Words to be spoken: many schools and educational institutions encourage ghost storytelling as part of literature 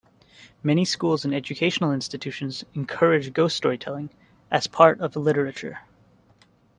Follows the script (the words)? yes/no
yes